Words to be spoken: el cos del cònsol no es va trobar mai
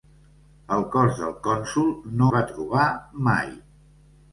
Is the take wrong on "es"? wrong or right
wrong